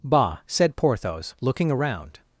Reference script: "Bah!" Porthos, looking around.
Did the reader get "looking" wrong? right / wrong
right